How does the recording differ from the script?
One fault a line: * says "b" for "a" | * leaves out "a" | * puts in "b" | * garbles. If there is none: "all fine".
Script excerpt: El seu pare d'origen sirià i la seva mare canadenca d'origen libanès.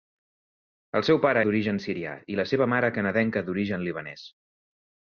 all fine